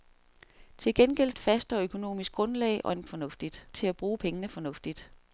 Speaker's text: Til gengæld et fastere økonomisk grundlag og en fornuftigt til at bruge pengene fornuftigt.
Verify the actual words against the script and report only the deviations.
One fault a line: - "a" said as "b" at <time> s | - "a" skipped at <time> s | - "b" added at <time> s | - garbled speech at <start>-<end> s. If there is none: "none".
none